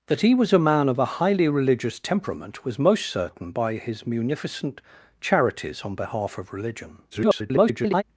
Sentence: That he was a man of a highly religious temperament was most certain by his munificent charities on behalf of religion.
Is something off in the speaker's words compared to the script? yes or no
yes